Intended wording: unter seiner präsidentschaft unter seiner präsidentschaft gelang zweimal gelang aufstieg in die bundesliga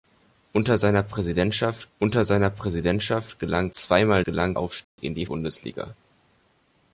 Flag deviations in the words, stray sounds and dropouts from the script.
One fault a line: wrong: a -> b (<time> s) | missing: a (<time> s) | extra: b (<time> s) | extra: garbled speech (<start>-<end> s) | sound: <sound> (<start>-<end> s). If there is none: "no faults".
sound: dropout (4.8-5.0 s)